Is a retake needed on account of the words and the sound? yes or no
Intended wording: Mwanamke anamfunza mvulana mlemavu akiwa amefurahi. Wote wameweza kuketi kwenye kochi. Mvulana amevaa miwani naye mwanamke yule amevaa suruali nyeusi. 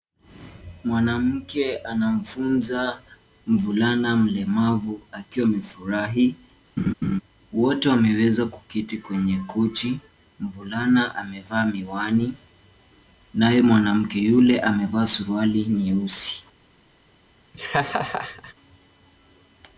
yes